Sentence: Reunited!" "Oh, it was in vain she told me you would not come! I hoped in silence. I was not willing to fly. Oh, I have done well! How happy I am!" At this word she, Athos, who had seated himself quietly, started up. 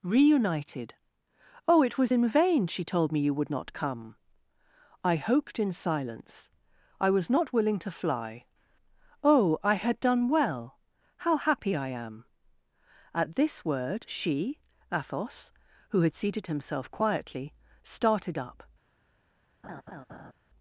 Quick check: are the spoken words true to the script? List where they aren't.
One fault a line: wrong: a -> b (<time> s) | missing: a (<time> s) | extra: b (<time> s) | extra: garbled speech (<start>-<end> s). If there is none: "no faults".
wrong: have -> had (9.7 s)